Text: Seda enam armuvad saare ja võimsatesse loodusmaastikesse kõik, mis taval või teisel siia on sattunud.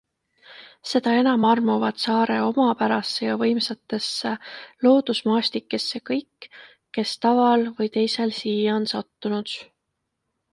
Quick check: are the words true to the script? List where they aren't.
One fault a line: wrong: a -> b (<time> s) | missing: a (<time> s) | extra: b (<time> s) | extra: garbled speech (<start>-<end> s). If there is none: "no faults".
extra: omapärasse (2.4 s)
wrong: mis -> kes (7.0 s)